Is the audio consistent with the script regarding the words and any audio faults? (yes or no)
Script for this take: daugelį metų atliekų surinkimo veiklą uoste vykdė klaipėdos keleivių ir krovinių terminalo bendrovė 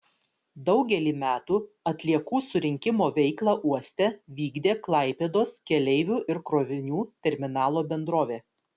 yes